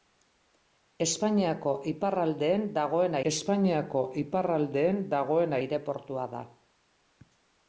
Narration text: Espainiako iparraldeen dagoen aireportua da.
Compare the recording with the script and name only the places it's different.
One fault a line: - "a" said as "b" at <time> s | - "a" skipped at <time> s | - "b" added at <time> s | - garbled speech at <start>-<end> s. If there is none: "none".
- "espainiako iparraldeen dagoen" added at 3.3 s